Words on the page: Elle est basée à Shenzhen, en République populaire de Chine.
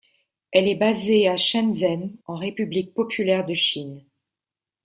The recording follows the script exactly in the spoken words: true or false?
true